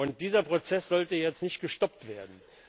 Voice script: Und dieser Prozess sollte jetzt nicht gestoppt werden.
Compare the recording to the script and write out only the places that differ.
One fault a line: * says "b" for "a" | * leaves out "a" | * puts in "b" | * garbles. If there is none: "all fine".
all fine